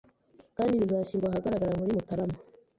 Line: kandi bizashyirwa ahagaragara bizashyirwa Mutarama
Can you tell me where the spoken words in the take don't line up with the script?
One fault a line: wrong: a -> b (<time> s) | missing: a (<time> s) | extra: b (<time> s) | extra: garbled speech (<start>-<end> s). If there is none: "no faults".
wrong: bizashyirwa -> muri (1.8 s)